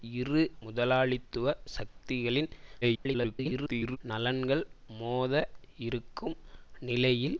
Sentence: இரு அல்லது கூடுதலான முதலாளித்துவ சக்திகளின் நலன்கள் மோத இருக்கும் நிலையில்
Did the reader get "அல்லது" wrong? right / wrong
wrong